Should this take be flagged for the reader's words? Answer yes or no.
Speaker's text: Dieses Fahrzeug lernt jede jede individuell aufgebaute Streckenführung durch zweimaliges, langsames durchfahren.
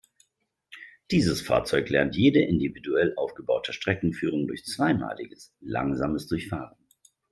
yes